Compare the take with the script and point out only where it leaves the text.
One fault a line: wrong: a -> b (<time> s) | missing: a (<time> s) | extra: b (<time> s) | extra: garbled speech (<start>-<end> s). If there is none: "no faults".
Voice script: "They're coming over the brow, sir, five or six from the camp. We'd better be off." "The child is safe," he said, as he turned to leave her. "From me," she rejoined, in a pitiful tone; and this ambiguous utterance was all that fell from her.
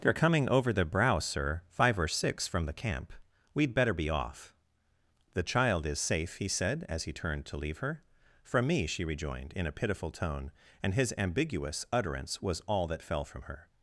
wrong: this -> his (10.9 s)